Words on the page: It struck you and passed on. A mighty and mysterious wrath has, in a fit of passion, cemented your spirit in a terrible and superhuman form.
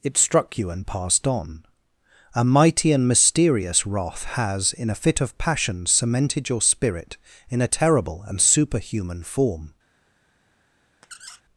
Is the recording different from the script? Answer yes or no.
no